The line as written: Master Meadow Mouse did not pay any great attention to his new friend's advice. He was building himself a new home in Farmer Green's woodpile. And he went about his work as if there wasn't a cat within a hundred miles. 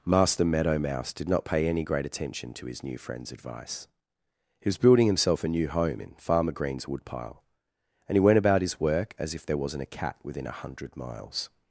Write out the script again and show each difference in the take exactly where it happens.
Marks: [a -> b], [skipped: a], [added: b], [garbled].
Master Meadow Mouse did not pay any great attention to his new friend's advice. He was building himself a new home in Farmer Green's woodpile. And he went about his work as if there wasn't a cat within a hundred miles.